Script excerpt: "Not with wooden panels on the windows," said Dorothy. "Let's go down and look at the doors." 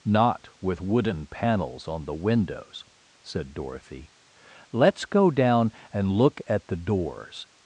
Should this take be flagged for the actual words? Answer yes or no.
no